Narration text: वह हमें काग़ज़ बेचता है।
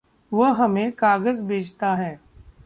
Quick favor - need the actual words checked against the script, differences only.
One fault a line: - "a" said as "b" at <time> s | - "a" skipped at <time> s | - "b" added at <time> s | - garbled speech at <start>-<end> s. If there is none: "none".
none